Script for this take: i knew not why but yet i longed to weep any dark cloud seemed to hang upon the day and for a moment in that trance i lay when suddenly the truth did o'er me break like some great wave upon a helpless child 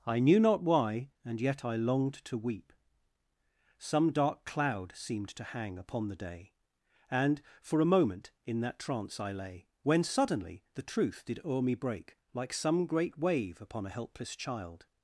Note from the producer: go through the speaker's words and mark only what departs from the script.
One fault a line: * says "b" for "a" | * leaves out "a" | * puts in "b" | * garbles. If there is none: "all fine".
* says "and" for "but"
* says "some" for "any"